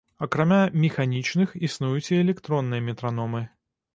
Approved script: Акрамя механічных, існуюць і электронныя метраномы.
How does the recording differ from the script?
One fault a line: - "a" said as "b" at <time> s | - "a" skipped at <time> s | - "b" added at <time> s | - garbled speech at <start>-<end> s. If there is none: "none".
none